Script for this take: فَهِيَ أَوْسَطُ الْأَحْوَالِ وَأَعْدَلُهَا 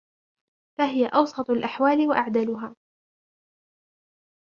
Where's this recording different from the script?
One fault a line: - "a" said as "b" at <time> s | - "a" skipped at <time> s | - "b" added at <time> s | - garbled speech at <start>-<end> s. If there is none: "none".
none